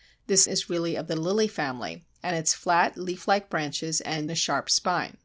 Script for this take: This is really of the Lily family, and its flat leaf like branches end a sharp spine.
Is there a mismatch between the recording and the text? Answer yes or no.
no